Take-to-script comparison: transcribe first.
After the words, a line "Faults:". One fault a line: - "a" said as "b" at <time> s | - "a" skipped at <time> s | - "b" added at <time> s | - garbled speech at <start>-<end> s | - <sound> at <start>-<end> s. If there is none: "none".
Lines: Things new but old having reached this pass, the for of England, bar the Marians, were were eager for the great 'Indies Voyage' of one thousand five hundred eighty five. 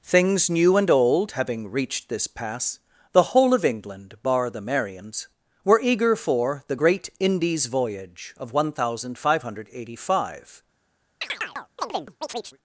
Things new and old having reached this pass, the whole of England, bar the Marians, were eager for the great 'Indies Voyage' of one thousand five hundred eighty five.
Faults:
- "but" said as "and" at 0.8 s
- "for" said as "whole" at 3.3 s
- "were" skipped at 5.8 s
- chirp at 11.2-12.6 s